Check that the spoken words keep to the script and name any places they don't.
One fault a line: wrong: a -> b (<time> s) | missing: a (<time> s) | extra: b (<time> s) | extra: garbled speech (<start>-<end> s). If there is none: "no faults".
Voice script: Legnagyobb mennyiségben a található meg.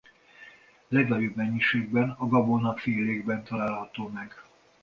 extra: gabonafélékben (2.3 s)